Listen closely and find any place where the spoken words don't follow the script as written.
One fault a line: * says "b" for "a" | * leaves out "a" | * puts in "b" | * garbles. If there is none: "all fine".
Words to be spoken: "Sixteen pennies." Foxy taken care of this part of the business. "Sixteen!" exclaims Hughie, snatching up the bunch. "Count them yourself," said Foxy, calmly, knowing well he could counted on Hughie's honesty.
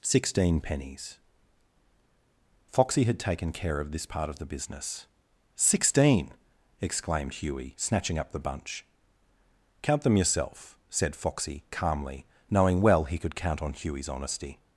* puts in "had"
* says "exclaimed" for "exclaims"
* says "count" for "counted"